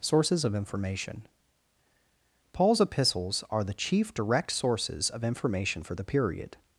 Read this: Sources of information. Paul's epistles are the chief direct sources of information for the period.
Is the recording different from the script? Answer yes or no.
no